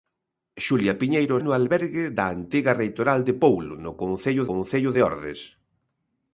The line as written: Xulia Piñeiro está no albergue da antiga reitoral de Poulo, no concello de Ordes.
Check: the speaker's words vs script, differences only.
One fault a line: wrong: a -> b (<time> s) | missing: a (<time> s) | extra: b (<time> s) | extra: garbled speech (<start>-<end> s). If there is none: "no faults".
missing: está (1.4 s)
extra: concello (4.5 s)